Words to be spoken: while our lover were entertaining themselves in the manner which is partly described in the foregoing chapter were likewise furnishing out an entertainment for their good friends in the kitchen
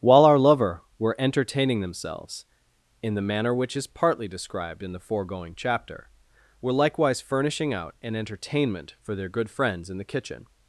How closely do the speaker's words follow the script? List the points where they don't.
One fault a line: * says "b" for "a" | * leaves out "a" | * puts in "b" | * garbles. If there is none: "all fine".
all fine